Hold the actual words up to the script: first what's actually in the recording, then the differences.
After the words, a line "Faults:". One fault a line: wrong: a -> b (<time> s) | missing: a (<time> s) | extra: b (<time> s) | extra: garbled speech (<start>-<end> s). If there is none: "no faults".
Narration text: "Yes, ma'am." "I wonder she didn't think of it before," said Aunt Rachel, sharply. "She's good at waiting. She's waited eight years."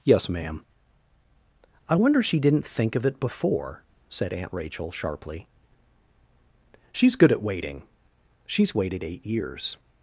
"Yes, ma'am." "I wonder she didn't think of it before," said Aunt Rachel, sharply. "She's good at waiting. She's waited eight years."
Faults:
no faults